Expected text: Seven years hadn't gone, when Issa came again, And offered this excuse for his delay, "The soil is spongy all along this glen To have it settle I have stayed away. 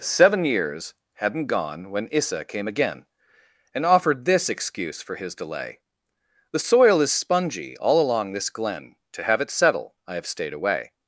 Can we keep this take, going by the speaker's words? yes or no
yes